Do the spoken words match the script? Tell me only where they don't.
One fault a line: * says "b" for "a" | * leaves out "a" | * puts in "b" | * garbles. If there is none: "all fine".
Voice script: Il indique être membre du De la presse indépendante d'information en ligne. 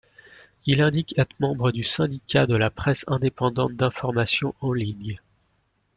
* puts in "Syndicat"